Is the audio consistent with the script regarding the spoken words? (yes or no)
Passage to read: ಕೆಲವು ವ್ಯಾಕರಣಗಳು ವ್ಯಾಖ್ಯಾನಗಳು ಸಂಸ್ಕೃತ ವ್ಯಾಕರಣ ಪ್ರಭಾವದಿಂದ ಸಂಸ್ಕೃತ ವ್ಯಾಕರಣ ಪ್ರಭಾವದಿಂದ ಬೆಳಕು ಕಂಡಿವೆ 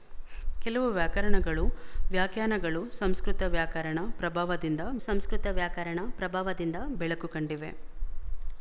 yes